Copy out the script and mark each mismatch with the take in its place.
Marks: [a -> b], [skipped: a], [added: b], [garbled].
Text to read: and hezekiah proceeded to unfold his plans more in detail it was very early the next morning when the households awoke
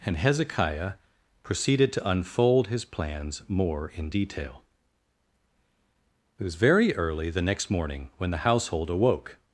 and hezekiah proceeded to unfold his plans more in detail it was very early the next morning when the [households -> household] awoke